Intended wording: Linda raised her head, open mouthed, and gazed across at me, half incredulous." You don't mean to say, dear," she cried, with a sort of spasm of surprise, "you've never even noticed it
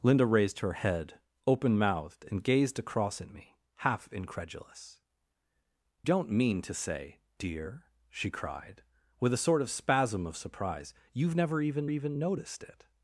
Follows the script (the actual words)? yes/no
no